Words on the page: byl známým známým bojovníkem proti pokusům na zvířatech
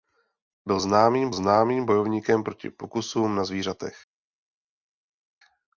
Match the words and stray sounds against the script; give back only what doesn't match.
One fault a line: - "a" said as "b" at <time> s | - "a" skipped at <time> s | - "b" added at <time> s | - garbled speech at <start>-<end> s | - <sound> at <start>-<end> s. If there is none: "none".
none